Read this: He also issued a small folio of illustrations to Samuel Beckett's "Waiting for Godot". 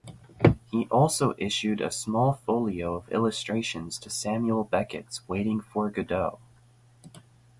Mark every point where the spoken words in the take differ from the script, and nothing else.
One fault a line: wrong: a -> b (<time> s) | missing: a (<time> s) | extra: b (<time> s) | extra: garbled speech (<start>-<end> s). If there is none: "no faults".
no faults